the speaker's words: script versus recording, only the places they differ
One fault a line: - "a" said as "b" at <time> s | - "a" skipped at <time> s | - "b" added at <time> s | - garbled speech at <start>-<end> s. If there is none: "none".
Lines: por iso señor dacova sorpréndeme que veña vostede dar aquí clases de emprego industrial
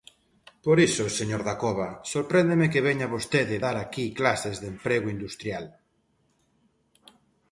none